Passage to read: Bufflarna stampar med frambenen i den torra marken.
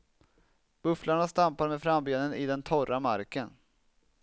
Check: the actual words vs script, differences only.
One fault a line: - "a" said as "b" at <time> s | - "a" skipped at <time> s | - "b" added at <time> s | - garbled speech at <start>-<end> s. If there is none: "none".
none